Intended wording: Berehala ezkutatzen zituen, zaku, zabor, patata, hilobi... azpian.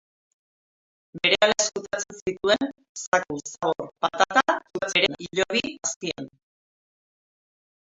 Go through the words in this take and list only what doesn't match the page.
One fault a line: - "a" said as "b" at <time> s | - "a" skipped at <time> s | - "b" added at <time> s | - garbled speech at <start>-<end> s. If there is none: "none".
- garbled speech at 4.7-5.2 s